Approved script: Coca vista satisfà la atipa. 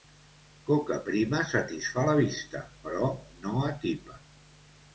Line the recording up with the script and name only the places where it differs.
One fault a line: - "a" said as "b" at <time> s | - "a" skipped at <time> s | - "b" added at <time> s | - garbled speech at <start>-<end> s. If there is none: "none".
- "vista" said as "prima" at 1.1 s
- "vista però no" added at 2.2 s